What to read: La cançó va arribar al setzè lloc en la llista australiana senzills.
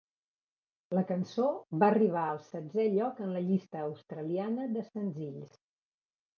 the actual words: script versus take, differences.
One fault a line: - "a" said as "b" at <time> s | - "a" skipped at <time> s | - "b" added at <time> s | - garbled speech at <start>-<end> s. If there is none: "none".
- "de" added at 4.8 s